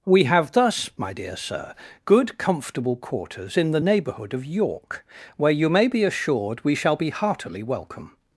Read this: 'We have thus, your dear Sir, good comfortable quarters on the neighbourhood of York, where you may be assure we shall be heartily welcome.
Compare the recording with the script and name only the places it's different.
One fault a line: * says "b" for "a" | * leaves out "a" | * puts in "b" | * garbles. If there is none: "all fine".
* says "my" for "your"
* says "in" for "on"
* says "assured" for "assure"